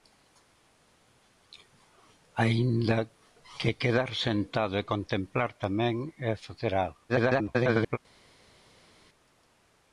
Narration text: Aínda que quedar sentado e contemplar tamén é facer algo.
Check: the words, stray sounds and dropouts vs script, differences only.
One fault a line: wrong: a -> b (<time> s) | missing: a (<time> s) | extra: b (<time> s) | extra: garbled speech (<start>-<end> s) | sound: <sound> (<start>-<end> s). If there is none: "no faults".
extra: garbled speech (7.1-8.0 s)